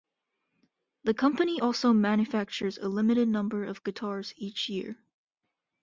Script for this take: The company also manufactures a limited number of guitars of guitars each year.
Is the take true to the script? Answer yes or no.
no